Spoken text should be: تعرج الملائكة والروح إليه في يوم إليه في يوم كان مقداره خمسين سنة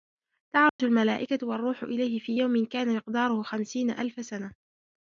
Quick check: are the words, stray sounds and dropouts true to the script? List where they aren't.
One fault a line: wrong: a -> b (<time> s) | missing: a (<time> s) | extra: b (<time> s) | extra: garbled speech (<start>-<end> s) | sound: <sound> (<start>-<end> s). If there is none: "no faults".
sound: dropout (0.7-0.8 s)
missing: إليه في يوم (2.6 s)
extra: ألف (3.9 s)